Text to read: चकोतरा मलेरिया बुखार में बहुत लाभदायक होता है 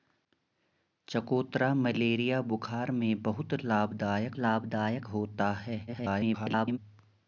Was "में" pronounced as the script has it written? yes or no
yes